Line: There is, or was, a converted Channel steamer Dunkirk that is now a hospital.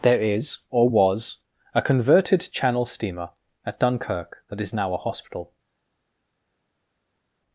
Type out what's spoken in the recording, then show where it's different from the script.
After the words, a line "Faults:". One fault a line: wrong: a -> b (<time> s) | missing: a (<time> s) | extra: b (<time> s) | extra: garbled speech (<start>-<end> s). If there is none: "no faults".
There is, or was, a converted Channel steamer at Dunkirk that is now a hospital.
Faults:
extra: at (3.6 s)